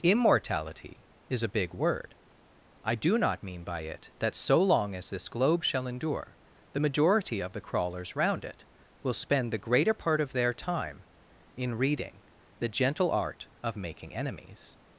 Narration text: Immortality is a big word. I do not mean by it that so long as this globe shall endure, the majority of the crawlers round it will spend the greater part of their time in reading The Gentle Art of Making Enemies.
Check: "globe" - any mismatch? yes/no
no